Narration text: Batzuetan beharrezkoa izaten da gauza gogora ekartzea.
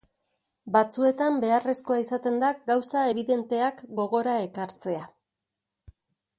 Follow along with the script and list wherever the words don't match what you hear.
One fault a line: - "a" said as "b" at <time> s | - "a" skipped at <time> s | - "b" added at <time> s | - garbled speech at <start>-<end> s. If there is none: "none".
- "ebidenteak" added at 3.1 s